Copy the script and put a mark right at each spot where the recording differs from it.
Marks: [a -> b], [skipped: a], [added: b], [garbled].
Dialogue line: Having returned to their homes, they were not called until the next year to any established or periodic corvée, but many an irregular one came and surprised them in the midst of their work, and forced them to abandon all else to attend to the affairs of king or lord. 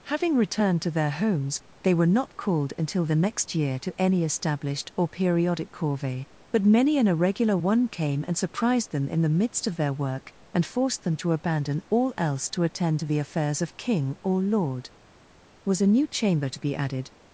Having returned to their homes, they were not called until the next year to any established or periodic corvée, but many an irregular one came and surprised them in the midst of their work, and forced them to abandon all else to attend to the affairs of king or lord. [added: Was a new chamber to be added]